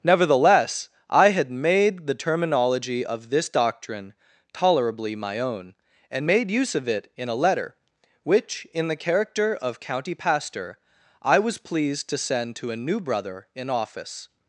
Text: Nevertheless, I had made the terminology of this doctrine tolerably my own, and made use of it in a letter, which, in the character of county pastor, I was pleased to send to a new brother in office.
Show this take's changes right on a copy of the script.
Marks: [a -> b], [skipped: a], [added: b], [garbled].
Nevertheless, I had made the terminology of this doctrine tolerably my own, and made use of it in a letter, which, in the character of county pastor, I was pleased to send to a new brother in office.